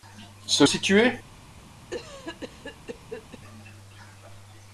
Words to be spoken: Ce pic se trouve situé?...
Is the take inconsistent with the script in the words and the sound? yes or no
yes